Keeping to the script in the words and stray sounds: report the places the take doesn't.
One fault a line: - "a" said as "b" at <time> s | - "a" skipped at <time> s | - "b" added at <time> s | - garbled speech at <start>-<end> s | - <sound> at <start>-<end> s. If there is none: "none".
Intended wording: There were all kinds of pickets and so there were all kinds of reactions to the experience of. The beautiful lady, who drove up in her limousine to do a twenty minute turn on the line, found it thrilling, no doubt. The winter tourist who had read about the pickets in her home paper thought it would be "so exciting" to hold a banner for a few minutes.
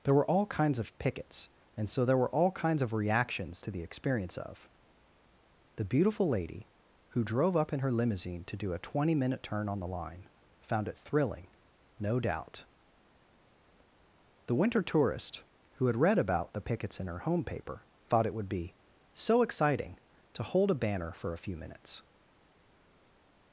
none